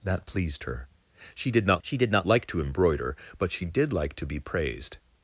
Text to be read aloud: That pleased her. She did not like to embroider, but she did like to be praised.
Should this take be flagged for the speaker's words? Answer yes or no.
yes